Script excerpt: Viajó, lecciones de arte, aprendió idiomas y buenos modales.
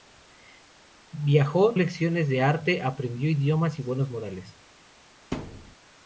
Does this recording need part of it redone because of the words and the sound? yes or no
yes